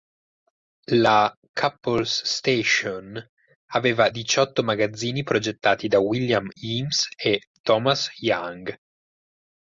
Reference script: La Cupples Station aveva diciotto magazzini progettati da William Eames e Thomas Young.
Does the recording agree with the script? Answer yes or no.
yes